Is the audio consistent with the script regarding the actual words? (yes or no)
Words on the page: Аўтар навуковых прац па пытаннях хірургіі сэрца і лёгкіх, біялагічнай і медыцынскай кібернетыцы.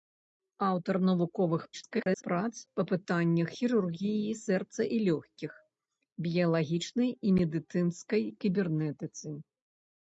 no